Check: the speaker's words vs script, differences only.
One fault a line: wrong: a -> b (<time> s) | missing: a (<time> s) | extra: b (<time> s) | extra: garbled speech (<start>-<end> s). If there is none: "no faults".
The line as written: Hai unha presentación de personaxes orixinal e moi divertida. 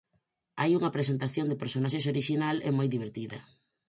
no faults